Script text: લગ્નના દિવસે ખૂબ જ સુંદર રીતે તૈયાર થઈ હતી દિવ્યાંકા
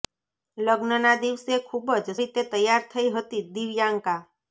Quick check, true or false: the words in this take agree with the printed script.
false